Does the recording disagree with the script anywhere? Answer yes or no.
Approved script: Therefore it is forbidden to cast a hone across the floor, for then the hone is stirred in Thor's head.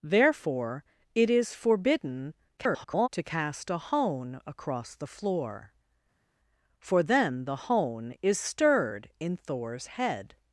yes